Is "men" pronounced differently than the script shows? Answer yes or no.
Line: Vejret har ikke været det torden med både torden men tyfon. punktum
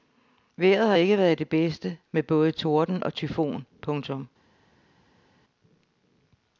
yes